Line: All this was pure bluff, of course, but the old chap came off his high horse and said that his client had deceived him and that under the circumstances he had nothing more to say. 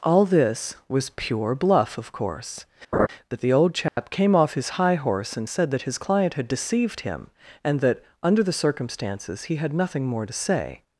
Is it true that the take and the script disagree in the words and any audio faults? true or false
true